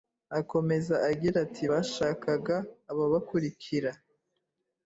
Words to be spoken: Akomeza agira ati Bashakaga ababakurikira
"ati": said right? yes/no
yes